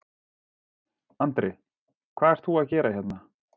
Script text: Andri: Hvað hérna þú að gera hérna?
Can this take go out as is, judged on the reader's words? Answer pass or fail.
fail